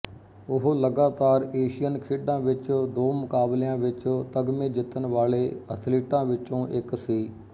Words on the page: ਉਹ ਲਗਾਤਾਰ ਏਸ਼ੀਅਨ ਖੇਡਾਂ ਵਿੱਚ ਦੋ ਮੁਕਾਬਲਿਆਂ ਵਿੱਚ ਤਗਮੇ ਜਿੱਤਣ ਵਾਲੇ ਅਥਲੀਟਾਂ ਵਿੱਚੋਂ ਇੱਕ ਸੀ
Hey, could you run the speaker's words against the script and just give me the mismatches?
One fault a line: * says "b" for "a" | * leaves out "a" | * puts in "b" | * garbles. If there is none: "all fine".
all fine